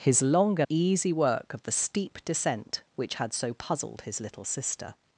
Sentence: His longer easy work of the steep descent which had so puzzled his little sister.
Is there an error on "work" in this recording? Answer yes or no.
no